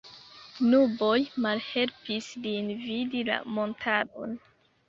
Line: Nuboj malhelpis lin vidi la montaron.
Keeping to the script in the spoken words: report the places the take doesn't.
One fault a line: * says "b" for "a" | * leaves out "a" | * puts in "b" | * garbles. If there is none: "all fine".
all fine